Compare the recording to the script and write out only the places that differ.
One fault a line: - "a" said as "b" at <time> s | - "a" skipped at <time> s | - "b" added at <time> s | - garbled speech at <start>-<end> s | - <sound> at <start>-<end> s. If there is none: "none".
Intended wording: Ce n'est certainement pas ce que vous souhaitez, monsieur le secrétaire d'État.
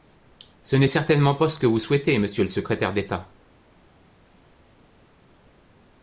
none